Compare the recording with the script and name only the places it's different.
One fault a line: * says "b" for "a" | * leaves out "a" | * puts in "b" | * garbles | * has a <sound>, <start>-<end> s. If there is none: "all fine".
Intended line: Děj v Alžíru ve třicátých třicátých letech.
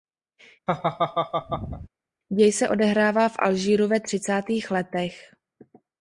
* has a laugh, 0.7-1.9 s
* puts in "se odehrává"
* leaves out "třicátých"